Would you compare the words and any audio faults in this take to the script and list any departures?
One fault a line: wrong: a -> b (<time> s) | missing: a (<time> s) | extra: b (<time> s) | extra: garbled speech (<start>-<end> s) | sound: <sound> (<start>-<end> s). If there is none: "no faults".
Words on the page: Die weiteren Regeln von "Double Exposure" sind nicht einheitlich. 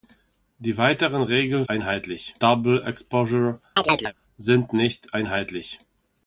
wrong: von -> einheitlich (1.7 s)
sound: chirp (3.8-4.1 s)